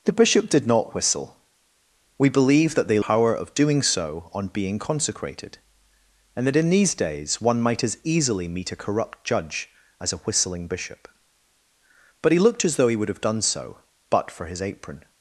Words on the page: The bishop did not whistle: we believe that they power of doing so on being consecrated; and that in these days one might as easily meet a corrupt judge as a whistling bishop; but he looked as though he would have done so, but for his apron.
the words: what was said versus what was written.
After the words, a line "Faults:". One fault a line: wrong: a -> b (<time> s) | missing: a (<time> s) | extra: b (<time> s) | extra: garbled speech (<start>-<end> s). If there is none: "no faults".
The bishop did not whistle: we believe that they power of doing so on being consecrated; and that in these days one might as easily meet a corrupt judge as a whistling bishop; but he looked as though he would have done so, but for his apron.
Faults:
no faults